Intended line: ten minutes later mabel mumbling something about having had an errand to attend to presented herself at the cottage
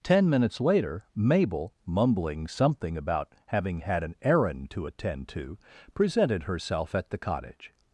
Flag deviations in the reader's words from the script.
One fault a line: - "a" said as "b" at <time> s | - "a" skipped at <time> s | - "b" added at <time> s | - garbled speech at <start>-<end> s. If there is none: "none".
none